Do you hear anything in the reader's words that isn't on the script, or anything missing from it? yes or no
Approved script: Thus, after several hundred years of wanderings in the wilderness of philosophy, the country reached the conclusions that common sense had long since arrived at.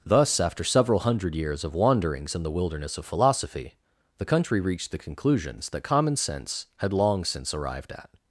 no